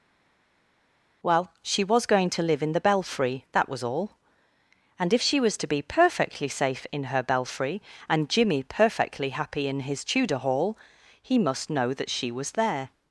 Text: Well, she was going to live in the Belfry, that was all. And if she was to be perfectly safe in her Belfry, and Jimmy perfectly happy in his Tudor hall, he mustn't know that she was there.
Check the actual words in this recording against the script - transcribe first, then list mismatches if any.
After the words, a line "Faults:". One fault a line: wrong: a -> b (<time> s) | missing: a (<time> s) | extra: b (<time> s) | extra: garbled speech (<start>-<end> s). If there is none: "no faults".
Well, she was going to live in the Belfry, that was all. And if she was to be perfectly safe in her Belfry, and Jimmy perfectly happy in his Tudor hall, he must know that she was there.
Faults:
wrong: mustn't -> must (11.4 s)